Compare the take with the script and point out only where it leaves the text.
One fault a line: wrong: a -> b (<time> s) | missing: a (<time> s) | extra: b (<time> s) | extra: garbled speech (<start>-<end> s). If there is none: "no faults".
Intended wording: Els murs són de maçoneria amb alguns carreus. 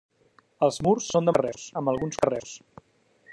wrong: maçoneria -> carreus (1.4 s)